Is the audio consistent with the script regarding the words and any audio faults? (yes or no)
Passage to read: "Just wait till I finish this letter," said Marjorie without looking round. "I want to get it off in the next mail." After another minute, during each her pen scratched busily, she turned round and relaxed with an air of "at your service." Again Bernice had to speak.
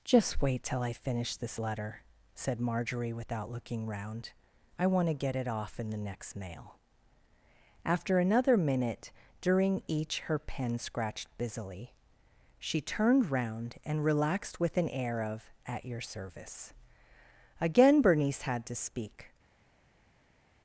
yes